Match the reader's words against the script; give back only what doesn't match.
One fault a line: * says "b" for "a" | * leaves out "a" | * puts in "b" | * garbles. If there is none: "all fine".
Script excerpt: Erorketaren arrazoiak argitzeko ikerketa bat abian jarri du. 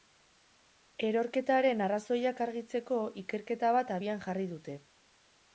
* says "dute" for "du"